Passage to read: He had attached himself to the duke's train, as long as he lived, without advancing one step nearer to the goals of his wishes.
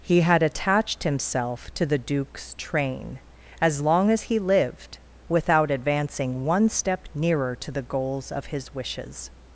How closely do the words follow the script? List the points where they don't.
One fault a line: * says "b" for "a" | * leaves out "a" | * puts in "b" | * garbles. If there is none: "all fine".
all fine